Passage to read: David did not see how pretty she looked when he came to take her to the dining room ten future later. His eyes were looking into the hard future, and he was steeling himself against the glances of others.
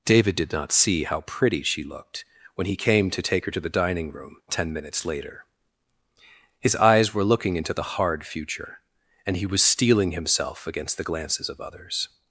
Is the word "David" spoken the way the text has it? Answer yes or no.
yes